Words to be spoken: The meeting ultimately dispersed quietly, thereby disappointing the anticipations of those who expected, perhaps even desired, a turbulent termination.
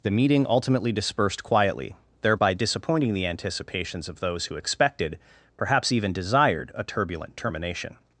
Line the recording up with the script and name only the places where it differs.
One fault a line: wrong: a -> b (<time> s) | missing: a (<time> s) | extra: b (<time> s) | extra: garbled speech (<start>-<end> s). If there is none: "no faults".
no faults